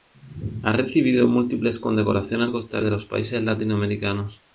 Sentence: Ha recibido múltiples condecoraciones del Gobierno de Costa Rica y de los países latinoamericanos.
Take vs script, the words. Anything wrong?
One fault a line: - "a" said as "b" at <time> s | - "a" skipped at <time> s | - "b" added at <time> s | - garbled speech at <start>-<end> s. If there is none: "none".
- "del Gobierno" skipped at 2.5 s
- "Rica" skipped at 2.8 s